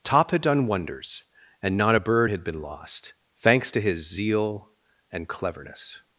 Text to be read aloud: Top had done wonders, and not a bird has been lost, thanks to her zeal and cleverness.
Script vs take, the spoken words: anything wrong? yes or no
yes